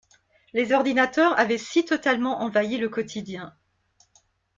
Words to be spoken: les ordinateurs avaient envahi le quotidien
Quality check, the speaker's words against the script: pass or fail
fail